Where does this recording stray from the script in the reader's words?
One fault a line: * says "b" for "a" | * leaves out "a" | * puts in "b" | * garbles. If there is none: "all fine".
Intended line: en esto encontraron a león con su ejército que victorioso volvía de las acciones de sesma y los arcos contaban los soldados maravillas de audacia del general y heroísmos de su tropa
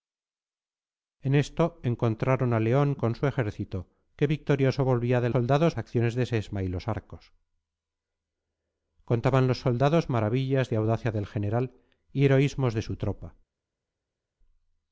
* says "soldados" for "las"